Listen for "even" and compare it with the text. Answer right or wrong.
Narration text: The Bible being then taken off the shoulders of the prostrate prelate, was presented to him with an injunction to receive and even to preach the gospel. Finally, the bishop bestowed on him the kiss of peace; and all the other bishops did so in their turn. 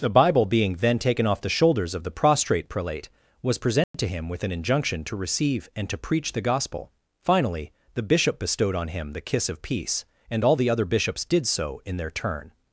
wrong